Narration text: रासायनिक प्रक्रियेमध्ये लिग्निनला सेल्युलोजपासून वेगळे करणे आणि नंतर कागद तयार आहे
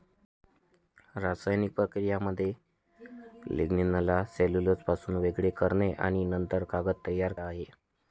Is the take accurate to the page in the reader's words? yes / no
yes